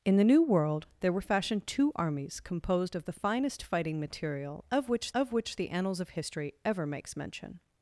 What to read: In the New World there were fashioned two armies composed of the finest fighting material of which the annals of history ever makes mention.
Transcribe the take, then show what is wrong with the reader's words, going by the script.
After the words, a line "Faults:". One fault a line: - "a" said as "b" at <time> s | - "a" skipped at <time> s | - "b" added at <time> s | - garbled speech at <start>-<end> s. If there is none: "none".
In the New World there were fashioned two armies composed of the finest fighting material of which of which the annals of history ever makes mention.
Faults:
- "of which" added at 5.1 s